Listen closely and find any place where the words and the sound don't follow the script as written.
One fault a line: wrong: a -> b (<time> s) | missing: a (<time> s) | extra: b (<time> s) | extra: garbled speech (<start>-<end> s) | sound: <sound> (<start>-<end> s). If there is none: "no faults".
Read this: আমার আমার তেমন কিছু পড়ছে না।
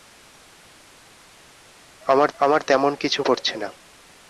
no faults